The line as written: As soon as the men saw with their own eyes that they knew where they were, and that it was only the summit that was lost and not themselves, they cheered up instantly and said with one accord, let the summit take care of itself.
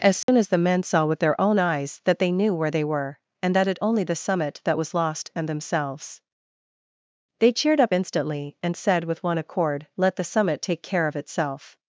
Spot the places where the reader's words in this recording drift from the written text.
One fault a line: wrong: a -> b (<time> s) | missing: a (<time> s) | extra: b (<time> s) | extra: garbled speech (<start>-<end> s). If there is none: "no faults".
missing: was (3.8 s)
missing: not (5.5 s)